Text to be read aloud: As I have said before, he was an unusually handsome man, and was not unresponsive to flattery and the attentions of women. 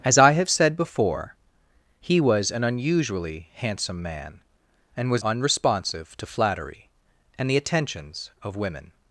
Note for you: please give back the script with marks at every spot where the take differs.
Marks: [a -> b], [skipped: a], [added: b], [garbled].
As I have said before, he was an unusually handsome man, and was [skipped: not] unresponsive to flattery and the attentions of women.